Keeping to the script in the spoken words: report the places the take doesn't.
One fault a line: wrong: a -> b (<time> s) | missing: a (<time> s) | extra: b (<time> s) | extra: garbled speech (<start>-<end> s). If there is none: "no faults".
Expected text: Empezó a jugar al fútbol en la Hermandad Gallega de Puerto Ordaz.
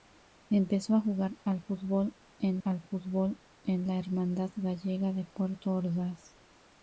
extra: al fútbol en (2.6 s)